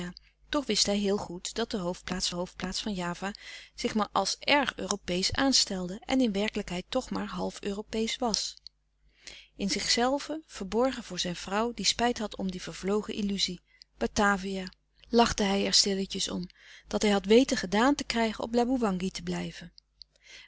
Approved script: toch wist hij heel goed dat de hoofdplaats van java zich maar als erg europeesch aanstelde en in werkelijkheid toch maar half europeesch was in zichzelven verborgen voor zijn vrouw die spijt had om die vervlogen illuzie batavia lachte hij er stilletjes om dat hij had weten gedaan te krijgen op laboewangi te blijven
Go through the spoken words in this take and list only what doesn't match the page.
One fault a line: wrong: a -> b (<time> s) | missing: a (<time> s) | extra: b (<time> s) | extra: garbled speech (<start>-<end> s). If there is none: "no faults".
extra: hoofdplaats (2.3 s)